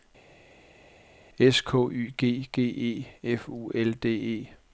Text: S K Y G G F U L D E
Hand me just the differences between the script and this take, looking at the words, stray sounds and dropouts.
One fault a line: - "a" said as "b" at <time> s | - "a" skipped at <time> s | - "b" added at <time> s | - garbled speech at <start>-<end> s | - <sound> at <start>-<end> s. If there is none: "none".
- "E" added at 2.6 s